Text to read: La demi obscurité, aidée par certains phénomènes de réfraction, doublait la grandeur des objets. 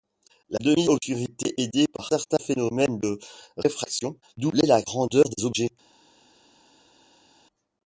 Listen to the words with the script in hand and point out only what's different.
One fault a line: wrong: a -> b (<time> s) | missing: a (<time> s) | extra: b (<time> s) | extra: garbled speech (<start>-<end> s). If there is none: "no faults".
no faults